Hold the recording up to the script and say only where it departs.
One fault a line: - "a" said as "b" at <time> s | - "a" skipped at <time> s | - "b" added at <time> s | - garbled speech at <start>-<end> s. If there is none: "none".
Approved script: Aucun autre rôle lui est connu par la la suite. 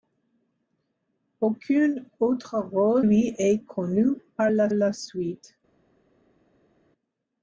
none